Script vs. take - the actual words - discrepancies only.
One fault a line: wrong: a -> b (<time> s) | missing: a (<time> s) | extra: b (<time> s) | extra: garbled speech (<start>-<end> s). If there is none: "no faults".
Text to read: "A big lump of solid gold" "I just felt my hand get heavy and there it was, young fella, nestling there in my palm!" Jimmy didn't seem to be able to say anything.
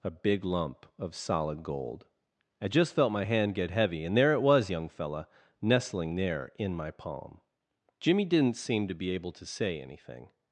no faults